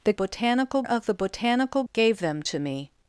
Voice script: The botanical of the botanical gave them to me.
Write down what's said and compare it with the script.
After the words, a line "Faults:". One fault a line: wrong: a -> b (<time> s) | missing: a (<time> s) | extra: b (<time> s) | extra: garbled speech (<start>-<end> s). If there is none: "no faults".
The botanical of the botanical gave them to me.
Faults:
no faults